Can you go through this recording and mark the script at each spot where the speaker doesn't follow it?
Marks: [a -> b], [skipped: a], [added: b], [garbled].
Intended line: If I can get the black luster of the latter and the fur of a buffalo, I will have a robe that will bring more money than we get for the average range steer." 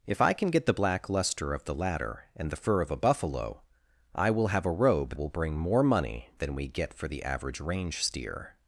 If I can get the black luster of the latter and the fur of a buffalo, I will have a robe [skipped: that] will bring more money than we get for the average range steer."